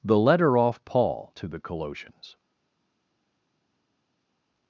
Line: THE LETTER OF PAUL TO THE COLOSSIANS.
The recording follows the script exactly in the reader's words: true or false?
false